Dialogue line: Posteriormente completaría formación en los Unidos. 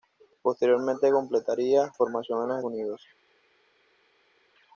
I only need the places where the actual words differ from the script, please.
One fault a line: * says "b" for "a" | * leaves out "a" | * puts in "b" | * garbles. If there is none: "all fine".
all fine